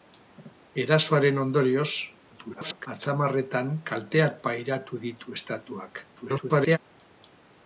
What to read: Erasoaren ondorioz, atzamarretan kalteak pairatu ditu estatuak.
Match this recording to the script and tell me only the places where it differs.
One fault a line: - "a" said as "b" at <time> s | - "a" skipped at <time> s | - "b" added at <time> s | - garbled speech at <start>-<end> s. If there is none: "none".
- garbled speech at 2.3-2.9 s
- garbled speech at 6.2-6.8 s